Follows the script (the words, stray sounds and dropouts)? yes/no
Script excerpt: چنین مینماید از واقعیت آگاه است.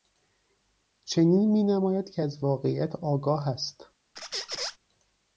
no